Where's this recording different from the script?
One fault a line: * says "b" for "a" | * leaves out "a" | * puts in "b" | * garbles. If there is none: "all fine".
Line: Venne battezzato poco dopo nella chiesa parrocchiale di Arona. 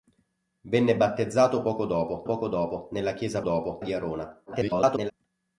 * puts in "poco dopo"
* says "dopo" for "parrocchiale"
* garbles